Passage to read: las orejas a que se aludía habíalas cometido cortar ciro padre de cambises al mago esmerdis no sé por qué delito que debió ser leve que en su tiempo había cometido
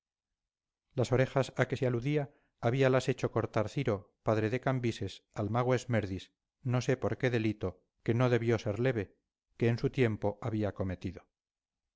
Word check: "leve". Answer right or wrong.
right